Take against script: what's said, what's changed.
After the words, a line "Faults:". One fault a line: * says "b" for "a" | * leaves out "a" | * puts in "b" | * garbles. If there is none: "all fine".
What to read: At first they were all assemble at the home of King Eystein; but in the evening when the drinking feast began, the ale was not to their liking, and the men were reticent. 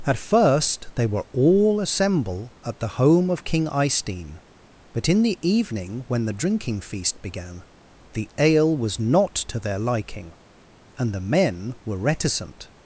At first they were all assemble at the home of King Eystein; but in the evening when the drinking feast began, the ale was not to their liking, and the men were reticent.
Faults:
all fine